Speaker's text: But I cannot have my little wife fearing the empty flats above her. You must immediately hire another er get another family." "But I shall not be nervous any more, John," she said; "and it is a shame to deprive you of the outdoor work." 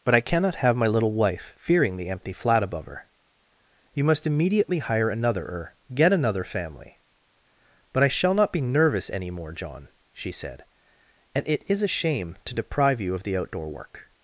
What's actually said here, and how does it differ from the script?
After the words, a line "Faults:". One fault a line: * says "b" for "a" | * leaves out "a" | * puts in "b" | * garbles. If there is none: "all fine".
But I cannot have my little wife fearing the empty flat above her. You must immediately hire another er get another family." "But I shall not be nervous any more, John," she said; "and it is a shame to deprive you of the outdoor work."
Faults:
* says "flat" for "flats"